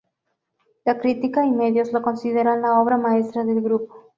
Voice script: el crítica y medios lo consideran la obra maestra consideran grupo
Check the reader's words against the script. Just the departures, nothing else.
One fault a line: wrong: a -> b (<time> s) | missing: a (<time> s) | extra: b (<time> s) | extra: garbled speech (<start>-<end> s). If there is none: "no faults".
wrong: el -> la (0.8 s)
wrong: consideran -> del (3.4 s)